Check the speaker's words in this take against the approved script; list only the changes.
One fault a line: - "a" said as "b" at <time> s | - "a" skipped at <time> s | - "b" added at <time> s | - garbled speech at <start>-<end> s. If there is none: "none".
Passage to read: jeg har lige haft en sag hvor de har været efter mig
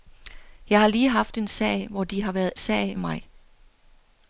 - "efter" said as "sag" at 2.6 s